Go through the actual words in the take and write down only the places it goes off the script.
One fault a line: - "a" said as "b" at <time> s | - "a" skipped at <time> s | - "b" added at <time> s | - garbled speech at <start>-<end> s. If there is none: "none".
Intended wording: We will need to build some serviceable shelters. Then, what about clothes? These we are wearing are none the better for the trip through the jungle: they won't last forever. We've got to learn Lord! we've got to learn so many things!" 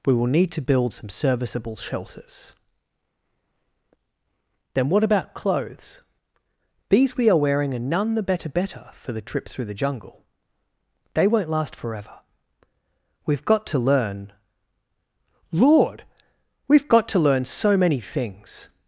- "better" added at 8.5 s